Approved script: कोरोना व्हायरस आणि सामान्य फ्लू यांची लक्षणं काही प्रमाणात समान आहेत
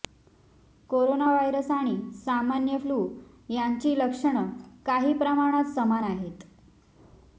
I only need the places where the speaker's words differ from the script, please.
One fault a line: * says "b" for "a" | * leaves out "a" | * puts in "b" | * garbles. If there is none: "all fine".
all fine